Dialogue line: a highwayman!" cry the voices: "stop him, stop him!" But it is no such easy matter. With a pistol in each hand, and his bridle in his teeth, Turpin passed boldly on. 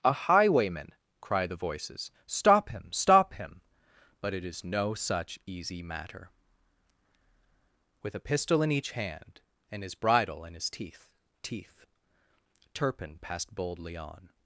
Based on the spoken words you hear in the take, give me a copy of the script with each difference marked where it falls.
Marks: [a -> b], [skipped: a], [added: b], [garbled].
a highwayman!" cry the voices: "stop him, stop him!" But it is no such easy matter. With a pistol in each hand, and his bridle in his teeth, [added: teeth] Turpin passed boldly on.